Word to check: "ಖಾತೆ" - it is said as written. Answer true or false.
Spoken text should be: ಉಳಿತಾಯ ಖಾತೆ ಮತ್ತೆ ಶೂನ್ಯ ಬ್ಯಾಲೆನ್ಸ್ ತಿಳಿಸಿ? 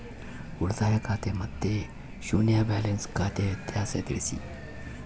true